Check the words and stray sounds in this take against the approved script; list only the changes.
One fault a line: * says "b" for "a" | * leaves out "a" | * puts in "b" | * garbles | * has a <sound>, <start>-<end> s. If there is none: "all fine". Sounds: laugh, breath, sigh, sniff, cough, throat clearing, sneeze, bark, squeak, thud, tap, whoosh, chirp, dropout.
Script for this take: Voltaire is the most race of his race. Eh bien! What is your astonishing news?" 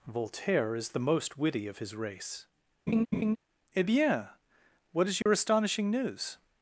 * says "witty" for "race"
* has a laugh, 2.9-3.4 s
* has a dropout, 5.2-5.3 s